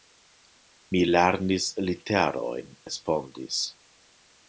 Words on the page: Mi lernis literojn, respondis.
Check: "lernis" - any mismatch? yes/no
no